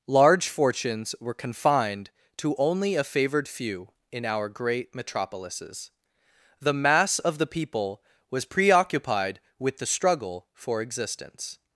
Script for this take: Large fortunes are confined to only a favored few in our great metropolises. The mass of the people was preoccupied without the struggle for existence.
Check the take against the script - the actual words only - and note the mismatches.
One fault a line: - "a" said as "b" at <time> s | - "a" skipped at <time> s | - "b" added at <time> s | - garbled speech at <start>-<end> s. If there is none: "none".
- "are" said as "were" at 1.2 s
- "without" said as "with" at 9.6 s